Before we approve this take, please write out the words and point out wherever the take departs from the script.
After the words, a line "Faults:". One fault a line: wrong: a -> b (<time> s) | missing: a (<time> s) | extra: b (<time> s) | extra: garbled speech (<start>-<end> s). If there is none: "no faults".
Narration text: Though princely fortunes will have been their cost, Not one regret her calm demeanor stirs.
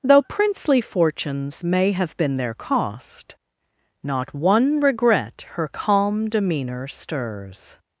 Though princely fortunes may have been their cost, Not one regret her calm demeanor stirs.
Faults:
wrong: will -> may (1.6 s)